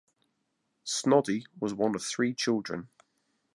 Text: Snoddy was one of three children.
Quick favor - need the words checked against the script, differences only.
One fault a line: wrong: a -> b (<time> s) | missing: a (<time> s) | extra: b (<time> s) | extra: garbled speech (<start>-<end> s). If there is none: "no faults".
no faults